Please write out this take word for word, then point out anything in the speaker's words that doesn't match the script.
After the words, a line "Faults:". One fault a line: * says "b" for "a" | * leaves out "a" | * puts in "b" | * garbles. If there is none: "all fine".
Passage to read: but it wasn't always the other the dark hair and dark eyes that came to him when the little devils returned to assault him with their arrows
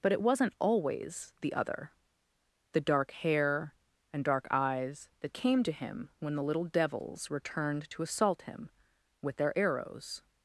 but it wasn't always the other the dark hair and dark eyes that came to him when the little devils returned to assault him with their arrows
Faults:
all fine